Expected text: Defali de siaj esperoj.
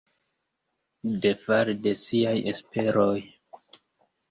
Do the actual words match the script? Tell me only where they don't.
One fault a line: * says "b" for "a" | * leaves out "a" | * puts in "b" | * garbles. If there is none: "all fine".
all fine